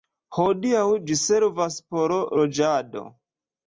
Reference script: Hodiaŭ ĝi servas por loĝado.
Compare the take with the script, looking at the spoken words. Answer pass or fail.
pass